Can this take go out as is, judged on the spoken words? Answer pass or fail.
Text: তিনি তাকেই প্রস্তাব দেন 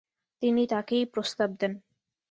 pass